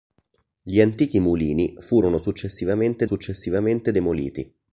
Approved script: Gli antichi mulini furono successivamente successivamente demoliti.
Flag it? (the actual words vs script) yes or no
no